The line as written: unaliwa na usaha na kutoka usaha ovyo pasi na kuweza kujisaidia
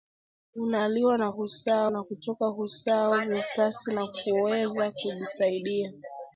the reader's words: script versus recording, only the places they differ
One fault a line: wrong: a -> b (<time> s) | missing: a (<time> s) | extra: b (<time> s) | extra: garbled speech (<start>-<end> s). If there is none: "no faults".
no faults